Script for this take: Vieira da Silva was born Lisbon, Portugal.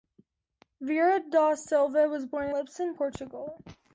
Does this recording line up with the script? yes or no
yes